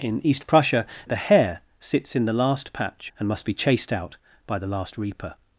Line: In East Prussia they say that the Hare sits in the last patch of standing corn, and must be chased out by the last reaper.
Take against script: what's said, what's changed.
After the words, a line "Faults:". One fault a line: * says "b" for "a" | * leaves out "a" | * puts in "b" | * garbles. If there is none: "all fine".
In East Prussia the Hare sits in the last patch and must be chased out by the last reaper.
Faults:
* leaves out "they say that"
* leaves out "of standing corn"